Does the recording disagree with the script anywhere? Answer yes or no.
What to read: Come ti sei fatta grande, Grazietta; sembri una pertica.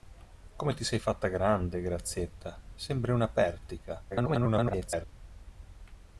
yes